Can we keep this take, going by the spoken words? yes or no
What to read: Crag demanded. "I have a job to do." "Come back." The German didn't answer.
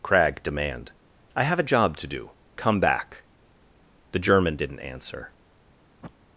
no